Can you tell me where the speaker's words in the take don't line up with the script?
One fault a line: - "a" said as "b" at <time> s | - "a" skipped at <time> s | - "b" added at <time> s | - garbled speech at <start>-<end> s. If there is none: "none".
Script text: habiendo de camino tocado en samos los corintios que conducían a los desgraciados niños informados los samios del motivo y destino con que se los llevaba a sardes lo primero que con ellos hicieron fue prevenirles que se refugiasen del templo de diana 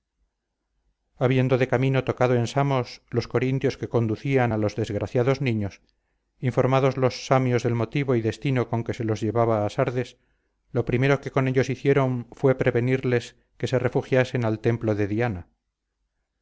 - "del" said as "al" at 14.4 s